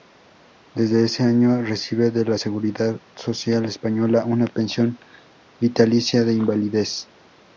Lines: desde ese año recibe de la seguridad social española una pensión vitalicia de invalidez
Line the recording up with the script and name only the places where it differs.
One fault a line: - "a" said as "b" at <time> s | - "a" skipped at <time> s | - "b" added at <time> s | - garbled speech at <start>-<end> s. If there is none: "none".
none